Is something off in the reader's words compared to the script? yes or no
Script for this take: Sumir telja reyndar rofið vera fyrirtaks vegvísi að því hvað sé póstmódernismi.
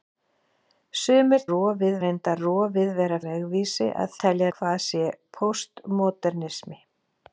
yes